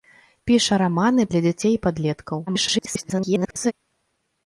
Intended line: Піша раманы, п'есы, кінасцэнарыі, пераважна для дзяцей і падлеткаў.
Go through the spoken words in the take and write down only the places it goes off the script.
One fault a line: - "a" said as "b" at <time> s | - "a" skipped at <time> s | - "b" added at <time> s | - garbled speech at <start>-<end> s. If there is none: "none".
- "п'есы кінасцэнарыі пераважна" skipped at 1.2 s
- garbled speech at 2.5-3.7 s